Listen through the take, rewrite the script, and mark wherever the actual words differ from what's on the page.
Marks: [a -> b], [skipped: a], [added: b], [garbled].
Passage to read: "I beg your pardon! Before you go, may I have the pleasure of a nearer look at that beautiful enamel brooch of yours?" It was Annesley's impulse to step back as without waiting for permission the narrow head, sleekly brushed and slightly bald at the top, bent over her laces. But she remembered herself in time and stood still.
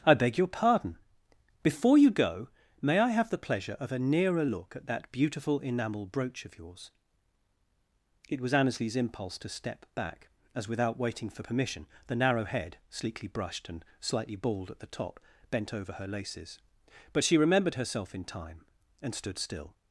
"I beg your pardon! Before you go, may I have the pleasure of a nearer look at that beautiful enamel brooch of yours?" It was Annesley's impulse to step back as without waiting for permission the narrow head, sleekly brushed and slightly bald at the top, bent over her laces. But she remembered herself in time and stood still.